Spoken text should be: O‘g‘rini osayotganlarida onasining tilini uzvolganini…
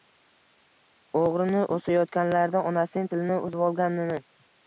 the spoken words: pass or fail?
pass